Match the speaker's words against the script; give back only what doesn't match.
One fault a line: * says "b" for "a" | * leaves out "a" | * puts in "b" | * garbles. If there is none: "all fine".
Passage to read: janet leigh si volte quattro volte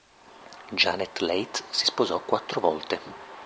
* says "sposò" for "volte"